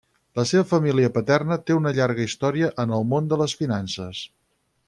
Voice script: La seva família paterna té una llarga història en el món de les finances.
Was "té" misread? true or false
false